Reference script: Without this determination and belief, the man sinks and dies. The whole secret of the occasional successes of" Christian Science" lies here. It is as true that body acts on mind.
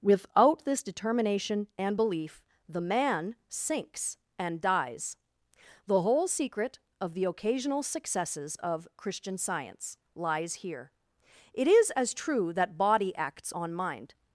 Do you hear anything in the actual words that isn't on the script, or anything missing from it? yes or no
no